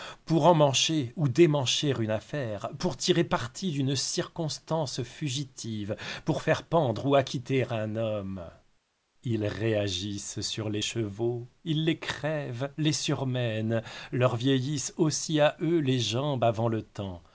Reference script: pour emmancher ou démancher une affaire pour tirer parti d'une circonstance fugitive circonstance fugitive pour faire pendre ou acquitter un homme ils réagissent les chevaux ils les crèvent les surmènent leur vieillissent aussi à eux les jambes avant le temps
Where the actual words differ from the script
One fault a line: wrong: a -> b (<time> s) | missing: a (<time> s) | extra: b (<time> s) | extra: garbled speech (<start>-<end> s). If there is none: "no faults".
missing: circonstance fugitive (6.0 s)
extra: sur (10.4 s)